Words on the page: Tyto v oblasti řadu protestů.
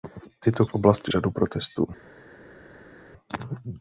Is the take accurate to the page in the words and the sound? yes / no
yes